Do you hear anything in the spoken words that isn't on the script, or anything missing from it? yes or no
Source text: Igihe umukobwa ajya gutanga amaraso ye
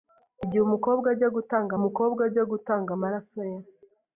yes